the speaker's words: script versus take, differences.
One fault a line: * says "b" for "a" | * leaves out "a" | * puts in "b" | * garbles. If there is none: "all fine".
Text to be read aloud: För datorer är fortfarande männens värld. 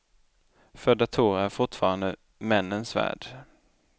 all fine